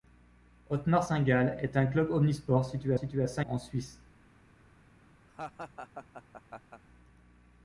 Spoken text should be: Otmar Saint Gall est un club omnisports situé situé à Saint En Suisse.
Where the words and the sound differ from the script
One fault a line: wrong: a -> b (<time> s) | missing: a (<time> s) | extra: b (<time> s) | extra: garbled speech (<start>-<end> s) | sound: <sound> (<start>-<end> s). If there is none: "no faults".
sound: laugh (5.3-6.8 s)